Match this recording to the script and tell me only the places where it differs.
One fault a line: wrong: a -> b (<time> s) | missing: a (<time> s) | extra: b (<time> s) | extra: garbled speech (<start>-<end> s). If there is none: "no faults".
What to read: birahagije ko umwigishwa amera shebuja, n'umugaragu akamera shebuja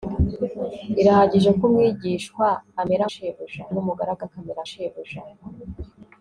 no faults